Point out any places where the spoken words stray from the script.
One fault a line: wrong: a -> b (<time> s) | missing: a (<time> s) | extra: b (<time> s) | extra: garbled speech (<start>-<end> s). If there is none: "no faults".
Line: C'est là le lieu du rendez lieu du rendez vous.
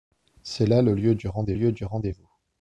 no faults